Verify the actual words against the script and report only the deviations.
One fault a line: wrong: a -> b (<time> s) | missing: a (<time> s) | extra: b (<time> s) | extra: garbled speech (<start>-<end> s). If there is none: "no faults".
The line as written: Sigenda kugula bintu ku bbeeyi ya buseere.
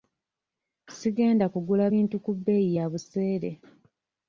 no faults